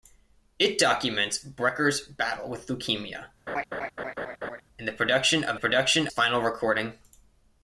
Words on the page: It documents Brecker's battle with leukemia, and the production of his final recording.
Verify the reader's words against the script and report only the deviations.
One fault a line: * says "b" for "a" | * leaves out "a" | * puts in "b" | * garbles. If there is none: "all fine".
* says "production" for "his"